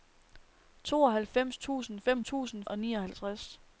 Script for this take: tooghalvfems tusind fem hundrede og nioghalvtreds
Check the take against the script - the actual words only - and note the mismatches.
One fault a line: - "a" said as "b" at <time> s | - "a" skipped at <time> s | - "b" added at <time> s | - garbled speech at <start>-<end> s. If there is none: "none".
- "hundrede" said as "tusind" at 2.2 s